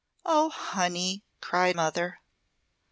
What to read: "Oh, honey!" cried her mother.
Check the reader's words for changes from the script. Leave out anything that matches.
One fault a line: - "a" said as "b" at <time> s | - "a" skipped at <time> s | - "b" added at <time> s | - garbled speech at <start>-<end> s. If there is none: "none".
- "her" skipped at 1.8 s